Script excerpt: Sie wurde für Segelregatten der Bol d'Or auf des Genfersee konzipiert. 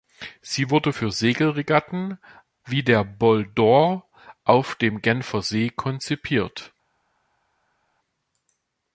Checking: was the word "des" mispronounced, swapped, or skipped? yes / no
yes